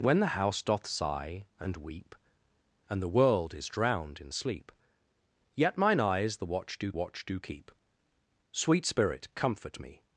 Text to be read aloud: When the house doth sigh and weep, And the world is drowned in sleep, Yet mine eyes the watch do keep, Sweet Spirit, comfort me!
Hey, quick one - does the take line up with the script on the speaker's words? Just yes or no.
no